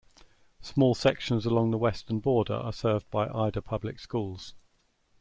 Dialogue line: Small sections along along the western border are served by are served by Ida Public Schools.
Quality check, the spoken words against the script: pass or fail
fail